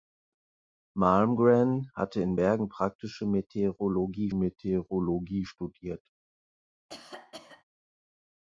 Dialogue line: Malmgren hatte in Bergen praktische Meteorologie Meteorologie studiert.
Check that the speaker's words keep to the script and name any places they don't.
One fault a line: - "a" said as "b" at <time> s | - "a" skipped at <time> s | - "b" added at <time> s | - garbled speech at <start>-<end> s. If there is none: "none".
none